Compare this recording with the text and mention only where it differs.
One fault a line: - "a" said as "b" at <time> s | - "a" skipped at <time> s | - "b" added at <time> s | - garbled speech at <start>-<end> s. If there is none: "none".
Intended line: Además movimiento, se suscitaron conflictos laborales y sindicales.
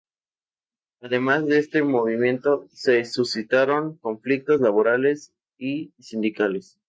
- "de este" added at 1.5 s